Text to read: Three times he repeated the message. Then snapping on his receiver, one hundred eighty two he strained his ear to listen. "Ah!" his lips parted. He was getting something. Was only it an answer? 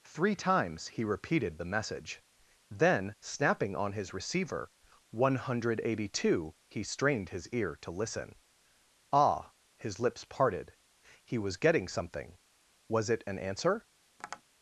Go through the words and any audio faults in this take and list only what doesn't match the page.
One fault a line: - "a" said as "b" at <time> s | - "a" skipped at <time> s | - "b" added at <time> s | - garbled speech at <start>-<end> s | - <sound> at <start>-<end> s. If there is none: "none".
- "only" skipped at 13.1 s
- tap at 14.2-14.4 s